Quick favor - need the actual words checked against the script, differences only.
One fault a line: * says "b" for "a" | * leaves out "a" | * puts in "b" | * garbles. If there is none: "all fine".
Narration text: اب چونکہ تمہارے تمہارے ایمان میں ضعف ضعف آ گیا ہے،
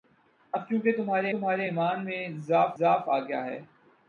all fine